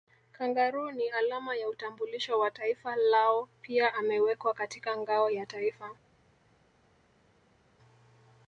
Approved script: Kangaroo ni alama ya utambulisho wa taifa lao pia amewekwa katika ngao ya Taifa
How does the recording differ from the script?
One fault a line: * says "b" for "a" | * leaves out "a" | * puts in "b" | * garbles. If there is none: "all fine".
all fine